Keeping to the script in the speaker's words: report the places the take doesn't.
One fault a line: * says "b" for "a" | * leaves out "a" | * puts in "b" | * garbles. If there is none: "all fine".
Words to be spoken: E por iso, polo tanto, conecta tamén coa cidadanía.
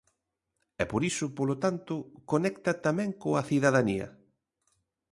all fine